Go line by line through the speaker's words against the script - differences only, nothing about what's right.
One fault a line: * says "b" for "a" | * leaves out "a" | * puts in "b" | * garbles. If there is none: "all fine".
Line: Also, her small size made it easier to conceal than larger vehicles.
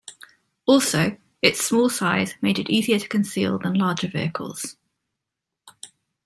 * says "its" for "her"